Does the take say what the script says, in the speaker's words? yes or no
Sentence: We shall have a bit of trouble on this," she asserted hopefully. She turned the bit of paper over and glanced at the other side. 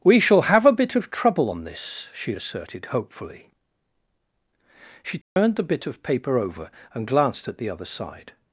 yes